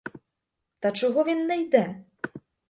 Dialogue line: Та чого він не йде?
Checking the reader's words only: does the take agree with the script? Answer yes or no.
yes